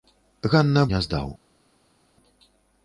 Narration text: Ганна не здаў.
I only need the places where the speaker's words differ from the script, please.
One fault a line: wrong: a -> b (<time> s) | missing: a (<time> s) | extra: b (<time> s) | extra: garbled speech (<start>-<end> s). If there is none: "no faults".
no faults